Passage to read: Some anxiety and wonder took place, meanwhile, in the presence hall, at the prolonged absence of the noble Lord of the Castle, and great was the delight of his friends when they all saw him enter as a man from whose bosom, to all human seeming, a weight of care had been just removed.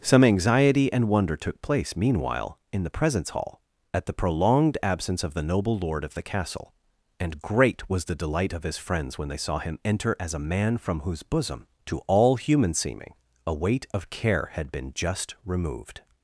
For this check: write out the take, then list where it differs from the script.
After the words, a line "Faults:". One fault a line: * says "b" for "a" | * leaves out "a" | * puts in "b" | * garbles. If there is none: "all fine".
Some anxiety and wonder took place, meanwhile, in the presence hall, at the prolonged absence of the noble Lord of the Castle, and great was the delight of his friends when they saw him enter as a man from whose bosom, to all human seeming, a weight of care had been just removed.
Faults:
* leaves out "all"